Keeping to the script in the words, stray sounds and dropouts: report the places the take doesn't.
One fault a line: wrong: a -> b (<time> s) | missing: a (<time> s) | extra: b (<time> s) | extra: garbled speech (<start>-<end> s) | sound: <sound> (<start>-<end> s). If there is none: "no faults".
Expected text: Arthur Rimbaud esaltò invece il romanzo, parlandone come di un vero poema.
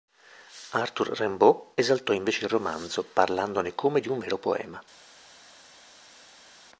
no faults